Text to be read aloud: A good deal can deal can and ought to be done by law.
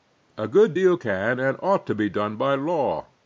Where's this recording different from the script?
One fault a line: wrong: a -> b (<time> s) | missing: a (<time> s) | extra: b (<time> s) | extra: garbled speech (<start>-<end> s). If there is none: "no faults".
missing: deal can (1.4 s)